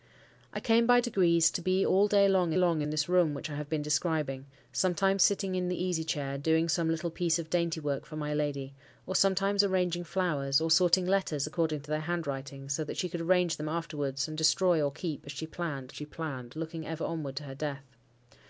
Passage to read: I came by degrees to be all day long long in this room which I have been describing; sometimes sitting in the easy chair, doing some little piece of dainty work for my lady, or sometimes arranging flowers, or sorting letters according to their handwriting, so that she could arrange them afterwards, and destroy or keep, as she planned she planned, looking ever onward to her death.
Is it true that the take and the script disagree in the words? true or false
false